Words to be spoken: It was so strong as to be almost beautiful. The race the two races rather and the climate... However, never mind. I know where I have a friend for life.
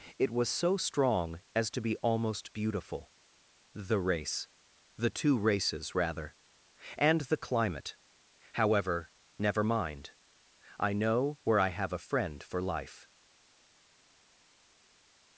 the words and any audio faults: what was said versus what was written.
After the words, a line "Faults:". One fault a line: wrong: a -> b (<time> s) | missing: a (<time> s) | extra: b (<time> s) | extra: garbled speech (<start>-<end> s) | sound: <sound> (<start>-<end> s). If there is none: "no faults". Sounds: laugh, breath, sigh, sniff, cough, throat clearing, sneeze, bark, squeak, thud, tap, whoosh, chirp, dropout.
It was so strong as to be almost beautiful. The race the two races rather and the climate... However, never mind. I know where I have a friend for life.
Faults:
no faults